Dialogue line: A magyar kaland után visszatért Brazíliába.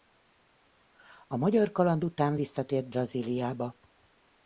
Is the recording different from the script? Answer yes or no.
no